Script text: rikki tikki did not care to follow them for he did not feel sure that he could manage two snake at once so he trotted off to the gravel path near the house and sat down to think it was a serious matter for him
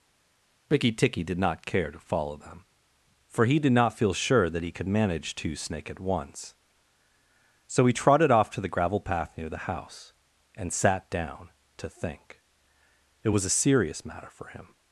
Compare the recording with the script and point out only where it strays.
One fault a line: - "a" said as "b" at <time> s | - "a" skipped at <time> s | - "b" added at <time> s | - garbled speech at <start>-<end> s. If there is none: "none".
none